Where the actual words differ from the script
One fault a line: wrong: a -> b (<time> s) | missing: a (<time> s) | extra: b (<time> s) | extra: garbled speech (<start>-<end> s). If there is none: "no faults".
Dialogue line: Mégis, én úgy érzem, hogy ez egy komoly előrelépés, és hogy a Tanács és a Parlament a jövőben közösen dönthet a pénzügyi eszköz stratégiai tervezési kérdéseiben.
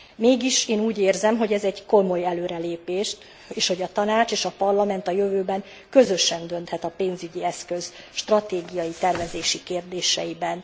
no faults